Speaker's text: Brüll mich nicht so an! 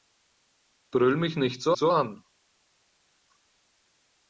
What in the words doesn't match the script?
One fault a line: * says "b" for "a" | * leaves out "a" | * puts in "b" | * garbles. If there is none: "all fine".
* puts in "so"